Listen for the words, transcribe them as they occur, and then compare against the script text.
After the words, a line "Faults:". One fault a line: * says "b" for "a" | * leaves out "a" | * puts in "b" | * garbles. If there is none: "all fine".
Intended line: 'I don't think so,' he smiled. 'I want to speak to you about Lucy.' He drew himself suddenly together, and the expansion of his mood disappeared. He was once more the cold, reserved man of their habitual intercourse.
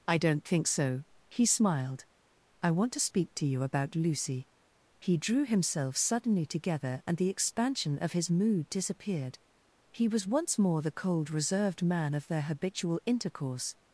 'I don't think so,' he smiled. 'I want to speak to you about Lucy.' He drew himself suddenly together, and the expansion of his mood disappeared. He was once more the cold, reserved man of their habitual intercourse.
Faults:
all fine